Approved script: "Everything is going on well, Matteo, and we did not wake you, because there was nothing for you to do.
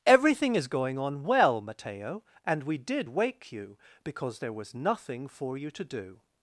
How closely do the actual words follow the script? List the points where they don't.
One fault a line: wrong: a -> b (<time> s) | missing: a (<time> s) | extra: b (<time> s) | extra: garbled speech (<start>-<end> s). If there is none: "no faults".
missing: not (3.1 s)